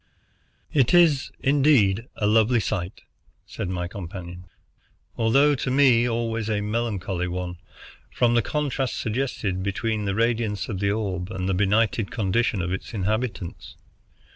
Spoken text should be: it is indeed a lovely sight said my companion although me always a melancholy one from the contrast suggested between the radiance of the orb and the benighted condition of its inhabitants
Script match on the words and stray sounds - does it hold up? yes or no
no